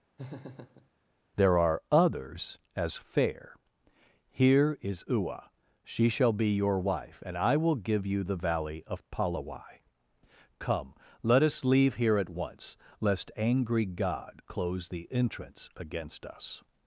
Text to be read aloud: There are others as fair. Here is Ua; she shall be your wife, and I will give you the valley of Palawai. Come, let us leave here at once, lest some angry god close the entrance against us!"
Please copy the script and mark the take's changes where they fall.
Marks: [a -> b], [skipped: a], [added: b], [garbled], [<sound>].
[laugh] There are others as fair. Here is Ua; she shall be your wife, and I will give you the valley of Palawai. Come, let us leave here at once, lest [skipped: some] angry god close the entrance against us!"